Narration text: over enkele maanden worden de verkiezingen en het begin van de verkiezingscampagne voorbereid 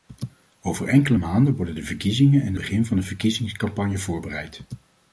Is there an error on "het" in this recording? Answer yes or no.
yes